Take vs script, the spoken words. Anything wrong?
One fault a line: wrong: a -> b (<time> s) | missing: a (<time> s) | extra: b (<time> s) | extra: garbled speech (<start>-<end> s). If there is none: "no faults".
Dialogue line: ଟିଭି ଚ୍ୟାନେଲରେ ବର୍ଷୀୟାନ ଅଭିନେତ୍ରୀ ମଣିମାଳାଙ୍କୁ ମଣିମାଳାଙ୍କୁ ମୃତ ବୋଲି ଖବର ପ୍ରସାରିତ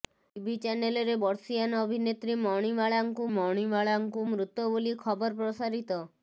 no faults